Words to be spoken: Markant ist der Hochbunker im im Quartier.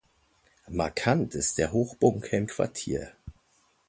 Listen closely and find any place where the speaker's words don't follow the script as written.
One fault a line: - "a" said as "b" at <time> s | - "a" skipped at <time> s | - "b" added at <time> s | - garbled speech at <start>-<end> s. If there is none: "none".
- "im" skipped at 2.5 s